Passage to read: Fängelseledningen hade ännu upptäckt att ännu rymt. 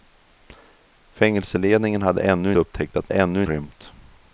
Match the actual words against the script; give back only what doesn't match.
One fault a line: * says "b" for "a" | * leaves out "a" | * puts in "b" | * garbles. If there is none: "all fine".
all fine